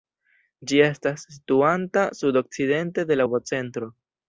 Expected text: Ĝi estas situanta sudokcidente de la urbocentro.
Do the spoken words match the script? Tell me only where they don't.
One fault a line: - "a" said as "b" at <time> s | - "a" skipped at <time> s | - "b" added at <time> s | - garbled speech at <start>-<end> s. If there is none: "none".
- "la" skipped at 3.2 s